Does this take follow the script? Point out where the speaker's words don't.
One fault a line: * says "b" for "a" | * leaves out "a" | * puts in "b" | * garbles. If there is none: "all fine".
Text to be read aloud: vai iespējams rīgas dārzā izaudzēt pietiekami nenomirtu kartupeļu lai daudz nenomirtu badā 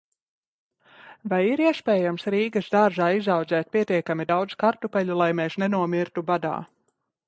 * puts in "ir"
* says "daudz" for "nenomirtu"
* says "mēs" for "daudz"